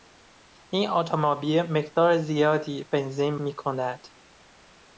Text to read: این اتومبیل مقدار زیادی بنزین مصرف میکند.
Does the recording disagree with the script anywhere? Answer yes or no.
yes